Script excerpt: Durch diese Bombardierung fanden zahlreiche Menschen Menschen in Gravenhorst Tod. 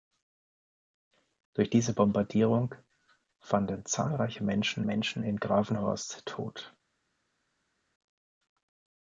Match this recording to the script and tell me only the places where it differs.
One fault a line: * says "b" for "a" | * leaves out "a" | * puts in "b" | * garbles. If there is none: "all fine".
all fine